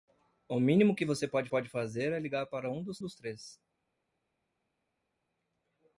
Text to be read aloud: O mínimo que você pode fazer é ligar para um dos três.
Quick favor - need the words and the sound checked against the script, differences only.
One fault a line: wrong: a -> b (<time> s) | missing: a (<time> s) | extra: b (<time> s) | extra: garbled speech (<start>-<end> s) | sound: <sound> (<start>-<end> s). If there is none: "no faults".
extra: pode (1.5 s)
extra: dos (3.0 s)